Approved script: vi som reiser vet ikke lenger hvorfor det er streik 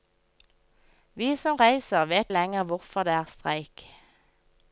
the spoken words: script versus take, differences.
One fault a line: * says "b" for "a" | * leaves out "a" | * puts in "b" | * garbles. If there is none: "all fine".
* leaves out "ikke"